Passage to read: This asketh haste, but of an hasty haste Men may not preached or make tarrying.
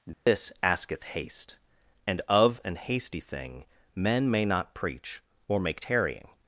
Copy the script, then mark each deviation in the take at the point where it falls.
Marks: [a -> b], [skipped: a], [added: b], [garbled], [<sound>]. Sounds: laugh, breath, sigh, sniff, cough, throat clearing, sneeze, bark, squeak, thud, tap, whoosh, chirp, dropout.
This [dropout] asketh haste, [but -> and] of an hasty [haste -> thing] Men may not [preached -> preach] or make tarrying.